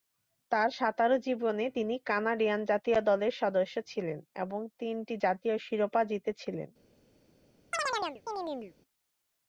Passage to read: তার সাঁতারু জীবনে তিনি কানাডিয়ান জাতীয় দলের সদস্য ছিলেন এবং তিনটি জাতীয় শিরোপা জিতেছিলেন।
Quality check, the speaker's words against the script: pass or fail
pass